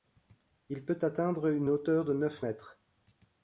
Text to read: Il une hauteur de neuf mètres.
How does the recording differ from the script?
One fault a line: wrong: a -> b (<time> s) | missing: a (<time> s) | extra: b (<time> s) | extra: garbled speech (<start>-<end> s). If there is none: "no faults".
extra: peut atteindre (0.8 s)